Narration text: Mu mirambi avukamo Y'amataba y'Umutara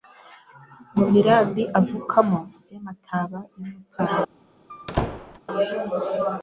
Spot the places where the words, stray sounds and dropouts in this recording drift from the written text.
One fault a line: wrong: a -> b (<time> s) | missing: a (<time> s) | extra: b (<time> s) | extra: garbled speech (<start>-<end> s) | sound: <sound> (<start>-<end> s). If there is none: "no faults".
sound: squeak (4.7-5.4 s)